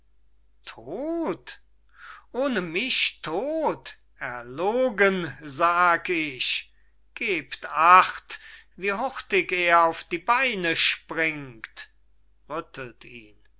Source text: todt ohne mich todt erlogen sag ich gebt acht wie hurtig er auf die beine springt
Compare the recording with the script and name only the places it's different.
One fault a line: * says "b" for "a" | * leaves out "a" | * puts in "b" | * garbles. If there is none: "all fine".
all fine